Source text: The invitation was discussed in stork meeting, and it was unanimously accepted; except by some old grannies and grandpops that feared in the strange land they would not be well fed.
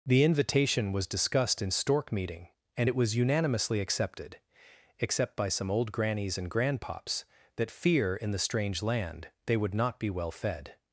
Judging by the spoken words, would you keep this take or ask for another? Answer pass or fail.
fail